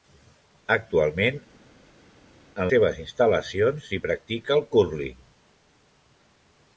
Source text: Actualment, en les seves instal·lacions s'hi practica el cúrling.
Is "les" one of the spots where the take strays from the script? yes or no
yes